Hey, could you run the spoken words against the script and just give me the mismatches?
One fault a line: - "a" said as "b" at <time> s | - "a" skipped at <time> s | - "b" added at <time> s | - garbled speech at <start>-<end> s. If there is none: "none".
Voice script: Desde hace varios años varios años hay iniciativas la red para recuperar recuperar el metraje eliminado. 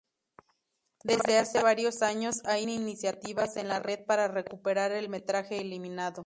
- "varios años" skipped at 2.4 s
- "en" added at 3.6 s
- "recuperar" skipped at 4.9 s